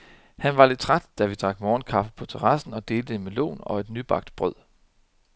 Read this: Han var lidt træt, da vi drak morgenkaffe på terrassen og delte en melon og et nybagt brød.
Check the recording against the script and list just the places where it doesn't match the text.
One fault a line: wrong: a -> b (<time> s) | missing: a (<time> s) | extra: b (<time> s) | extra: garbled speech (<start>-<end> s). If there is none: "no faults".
no faults